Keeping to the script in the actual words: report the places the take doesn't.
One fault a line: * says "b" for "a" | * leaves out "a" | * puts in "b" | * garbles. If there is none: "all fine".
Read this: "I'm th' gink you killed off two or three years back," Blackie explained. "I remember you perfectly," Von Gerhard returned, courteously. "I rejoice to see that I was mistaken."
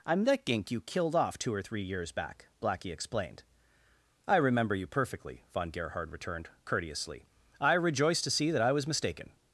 * says "that" for "th"